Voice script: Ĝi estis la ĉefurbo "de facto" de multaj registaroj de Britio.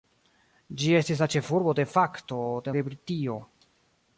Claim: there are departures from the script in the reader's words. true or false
true